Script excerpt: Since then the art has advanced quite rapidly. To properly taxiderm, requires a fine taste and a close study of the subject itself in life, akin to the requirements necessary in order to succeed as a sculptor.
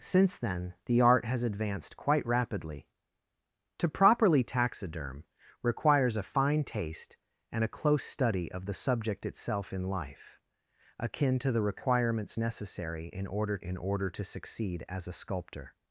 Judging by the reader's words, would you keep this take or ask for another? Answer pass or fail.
fail